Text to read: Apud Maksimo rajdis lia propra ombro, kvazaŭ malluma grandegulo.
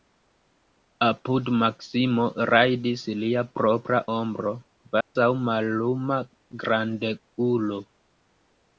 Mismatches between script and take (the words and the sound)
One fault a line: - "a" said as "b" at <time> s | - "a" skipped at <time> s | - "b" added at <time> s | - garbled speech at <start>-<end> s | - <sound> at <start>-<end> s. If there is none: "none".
- dropout at 5.0-5.2 s